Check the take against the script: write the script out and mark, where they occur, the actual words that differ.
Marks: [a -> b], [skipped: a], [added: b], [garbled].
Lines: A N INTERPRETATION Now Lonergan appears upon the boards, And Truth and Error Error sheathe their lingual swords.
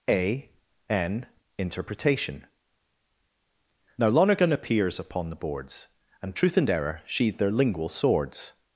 A N INTERPRETATION Now Lonergan appears upon the boards, And Truth and Error [skipped: Error] sheathe their lingual swords.